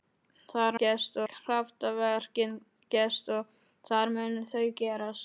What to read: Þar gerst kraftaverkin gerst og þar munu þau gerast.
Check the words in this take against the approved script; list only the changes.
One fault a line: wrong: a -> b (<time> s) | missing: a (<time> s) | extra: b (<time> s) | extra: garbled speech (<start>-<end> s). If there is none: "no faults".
no faults